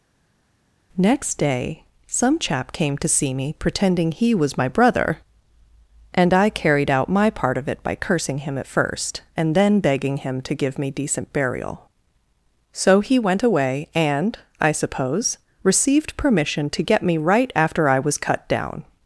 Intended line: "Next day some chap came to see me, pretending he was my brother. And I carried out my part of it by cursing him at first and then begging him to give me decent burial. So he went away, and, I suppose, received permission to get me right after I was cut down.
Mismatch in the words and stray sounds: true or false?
false